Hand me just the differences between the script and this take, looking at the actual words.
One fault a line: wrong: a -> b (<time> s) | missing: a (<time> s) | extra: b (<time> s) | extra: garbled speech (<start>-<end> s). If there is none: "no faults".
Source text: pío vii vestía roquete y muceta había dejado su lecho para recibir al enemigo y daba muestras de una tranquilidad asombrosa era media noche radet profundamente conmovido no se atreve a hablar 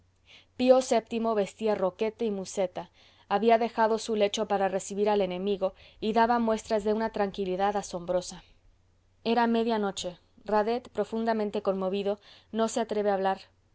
no faults